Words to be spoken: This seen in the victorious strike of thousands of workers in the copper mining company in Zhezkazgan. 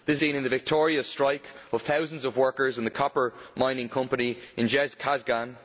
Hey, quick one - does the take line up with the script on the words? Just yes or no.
yes